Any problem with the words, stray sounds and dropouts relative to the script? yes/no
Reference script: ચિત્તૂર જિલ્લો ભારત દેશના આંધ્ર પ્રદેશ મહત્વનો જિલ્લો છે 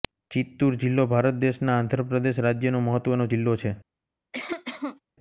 yes